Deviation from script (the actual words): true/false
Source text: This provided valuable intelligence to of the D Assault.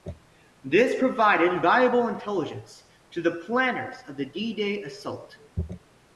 true